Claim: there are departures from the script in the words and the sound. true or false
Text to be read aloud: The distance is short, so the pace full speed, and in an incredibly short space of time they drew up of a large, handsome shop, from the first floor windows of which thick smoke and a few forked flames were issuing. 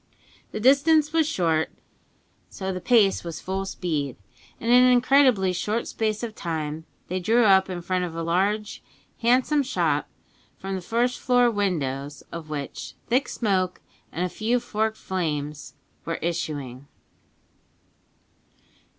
true